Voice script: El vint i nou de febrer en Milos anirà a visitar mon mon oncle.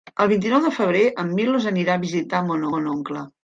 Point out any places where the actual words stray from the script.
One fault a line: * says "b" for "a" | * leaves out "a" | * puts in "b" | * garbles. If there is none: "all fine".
all fine